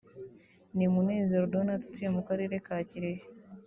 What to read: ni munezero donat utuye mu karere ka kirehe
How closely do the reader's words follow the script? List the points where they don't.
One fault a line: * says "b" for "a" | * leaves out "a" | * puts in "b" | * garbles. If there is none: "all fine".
all fine